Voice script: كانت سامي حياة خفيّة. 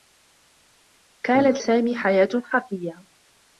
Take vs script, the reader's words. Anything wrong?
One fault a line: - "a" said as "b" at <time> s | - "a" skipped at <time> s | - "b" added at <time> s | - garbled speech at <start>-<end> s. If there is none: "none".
none